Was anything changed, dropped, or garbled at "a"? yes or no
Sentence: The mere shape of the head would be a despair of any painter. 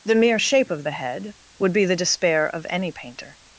yes